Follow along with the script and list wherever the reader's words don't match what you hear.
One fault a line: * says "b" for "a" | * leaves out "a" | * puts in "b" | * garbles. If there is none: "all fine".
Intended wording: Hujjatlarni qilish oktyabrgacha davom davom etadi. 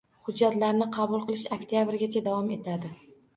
* puts in "qabul"
* leaves out "davom"